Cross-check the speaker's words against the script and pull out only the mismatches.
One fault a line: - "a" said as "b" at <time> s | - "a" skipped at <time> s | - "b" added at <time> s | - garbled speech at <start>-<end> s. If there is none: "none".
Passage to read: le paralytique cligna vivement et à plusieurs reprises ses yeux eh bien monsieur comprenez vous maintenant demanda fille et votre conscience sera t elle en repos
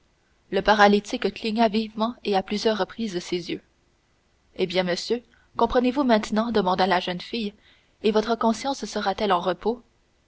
- "la jeune" added at 6.9 s